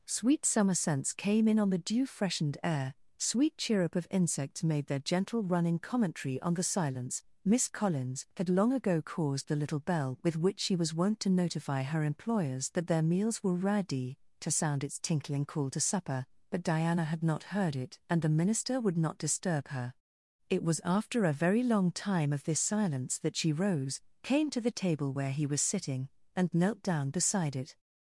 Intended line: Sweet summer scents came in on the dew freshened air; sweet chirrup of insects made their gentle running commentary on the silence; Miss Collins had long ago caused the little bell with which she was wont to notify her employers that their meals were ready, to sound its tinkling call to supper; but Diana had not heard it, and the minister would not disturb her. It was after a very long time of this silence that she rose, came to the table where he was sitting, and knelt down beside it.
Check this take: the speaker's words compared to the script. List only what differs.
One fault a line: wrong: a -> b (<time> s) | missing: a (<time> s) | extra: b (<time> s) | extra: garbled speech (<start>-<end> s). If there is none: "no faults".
no faults